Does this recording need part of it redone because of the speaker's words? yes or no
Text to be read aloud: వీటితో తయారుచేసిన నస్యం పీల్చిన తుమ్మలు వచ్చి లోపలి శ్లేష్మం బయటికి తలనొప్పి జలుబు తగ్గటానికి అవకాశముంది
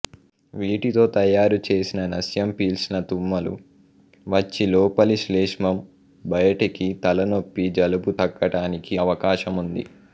no